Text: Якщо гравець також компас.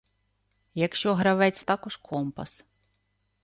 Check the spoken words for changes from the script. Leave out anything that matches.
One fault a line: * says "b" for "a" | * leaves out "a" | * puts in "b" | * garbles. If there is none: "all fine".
all fine